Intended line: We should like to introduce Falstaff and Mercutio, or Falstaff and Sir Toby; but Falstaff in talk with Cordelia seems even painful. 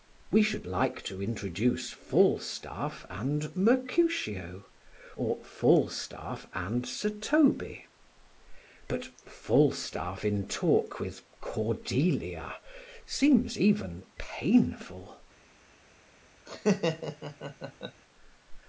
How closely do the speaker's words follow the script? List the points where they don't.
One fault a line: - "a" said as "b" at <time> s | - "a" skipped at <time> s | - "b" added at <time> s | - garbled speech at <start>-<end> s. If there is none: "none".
none